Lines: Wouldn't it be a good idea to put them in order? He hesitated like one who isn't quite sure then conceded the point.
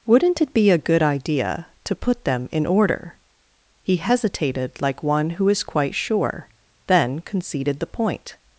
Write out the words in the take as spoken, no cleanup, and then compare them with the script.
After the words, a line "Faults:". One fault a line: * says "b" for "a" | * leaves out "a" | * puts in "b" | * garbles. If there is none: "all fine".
Wouldn't it be a good idea to put them in order? He hesitated like one who is quite sure then conceded the point.
Faults:
* says "is" for "isn't"